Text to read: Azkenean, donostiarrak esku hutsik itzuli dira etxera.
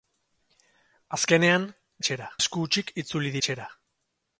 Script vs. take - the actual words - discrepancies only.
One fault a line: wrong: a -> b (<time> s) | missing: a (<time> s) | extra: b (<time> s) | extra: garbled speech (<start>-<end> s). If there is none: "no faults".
wrong: donostiarrak -> etxera (2.0 s)
missing: dira (3.3 s)